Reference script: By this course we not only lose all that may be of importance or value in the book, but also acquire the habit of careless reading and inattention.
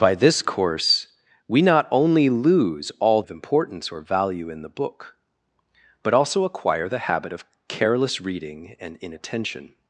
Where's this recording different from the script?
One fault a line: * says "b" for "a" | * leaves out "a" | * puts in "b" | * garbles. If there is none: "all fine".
* leaves out "that may be"